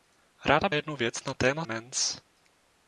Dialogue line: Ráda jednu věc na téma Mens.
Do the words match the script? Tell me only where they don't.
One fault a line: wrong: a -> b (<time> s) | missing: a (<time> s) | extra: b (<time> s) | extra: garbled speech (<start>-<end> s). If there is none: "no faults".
no faults